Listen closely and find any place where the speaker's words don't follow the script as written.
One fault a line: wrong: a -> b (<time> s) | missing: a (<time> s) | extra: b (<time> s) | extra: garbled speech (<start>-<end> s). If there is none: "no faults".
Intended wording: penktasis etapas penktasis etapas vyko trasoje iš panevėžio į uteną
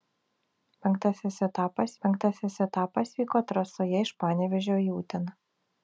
no faults